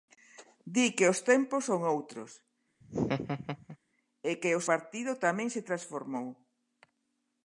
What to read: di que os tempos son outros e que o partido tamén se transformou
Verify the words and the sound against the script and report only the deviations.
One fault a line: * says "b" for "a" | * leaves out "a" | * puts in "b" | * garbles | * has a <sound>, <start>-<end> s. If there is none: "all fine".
* has a laugh, 2.8-3.8 s